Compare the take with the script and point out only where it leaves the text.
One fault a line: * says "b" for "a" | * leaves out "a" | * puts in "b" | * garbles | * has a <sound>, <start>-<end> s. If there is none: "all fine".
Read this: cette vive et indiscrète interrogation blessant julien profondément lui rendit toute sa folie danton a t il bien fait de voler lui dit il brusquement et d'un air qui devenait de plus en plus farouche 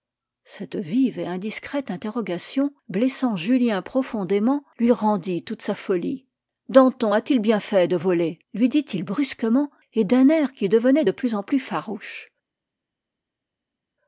all fine